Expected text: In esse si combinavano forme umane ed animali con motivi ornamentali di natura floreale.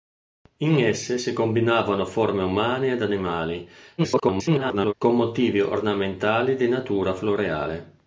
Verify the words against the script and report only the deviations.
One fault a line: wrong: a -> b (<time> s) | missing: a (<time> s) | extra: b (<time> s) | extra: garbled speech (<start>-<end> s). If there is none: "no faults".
extra: garbled speech (4.0-4.9 s)